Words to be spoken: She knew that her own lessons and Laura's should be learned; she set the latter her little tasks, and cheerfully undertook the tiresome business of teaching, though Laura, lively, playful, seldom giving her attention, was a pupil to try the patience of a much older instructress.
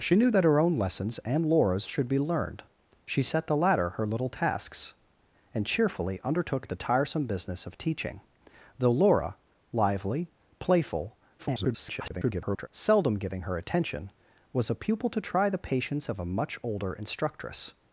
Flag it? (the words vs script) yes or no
yes